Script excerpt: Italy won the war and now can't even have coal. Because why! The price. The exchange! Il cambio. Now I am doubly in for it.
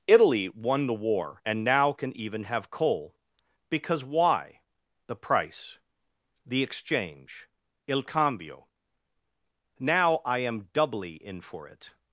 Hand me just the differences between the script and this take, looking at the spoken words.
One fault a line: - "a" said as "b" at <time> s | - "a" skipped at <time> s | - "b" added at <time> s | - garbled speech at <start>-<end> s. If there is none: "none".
- "can't" said as "can" at 1.9 s